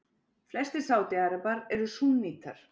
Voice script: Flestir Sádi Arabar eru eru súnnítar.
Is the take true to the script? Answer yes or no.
no